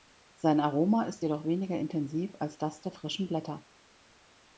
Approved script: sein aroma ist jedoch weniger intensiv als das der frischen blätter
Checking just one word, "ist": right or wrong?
right